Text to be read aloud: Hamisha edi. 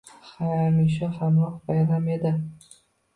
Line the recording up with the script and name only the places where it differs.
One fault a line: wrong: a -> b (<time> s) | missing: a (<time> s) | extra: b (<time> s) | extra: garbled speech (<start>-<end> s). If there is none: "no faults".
extra: hamroh bayram (1.2 s)